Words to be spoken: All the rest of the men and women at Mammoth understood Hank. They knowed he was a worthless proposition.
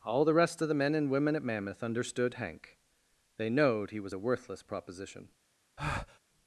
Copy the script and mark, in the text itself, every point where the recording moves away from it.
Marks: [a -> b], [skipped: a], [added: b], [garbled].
All the rest of the men and women at Mammoth understood Hank. They knowed he was a worthless proposition.